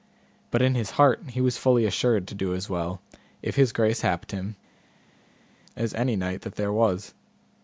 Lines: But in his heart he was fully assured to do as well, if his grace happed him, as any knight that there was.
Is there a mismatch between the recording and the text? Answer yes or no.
no